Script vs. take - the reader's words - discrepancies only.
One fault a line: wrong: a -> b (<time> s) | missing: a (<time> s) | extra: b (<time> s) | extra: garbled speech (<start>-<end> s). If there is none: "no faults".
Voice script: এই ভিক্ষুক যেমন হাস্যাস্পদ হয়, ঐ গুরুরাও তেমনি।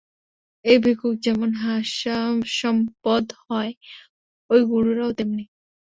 no faults